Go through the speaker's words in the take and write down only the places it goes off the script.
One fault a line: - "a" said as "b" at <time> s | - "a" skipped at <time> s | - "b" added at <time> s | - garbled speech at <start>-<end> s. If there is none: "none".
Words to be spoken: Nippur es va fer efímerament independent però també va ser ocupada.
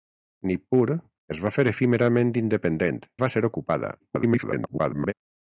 - "però també" skipped at 3.0 s
- garbled speech at 4.0-5.1 s